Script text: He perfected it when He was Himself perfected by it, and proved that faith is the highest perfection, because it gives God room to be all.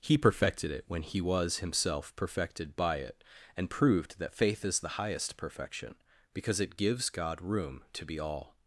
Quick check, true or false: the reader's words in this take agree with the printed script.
true